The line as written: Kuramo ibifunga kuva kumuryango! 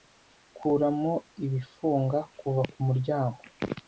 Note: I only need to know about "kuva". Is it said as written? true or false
true